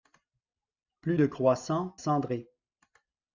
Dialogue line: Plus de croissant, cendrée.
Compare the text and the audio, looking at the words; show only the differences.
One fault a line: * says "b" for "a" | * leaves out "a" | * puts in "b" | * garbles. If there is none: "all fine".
all fine